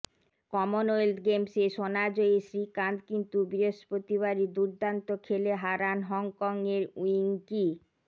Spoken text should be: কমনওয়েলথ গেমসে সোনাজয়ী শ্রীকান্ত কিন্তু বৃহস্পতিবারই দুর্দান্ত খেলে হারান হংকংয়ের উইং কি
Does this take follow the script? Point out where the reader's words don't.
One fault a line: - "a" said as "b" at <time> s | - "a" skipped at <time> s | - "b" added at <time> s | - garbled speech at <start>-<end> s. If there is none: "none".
none